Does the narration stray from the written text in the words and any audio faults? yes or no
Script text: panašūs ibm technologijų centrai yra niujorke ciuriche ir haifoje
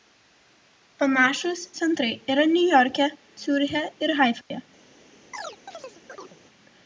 yes